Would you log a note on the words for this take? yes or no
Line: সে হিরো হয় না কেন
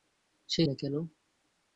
yes